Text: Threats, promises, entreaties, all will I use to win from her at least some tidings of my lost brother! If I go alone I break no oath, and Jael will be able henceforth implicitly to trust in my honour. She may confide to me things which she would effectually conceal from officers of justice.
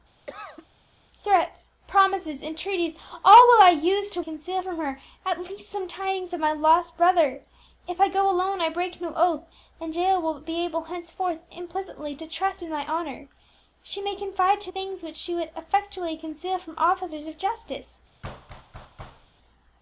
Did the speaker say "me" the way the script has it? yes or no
no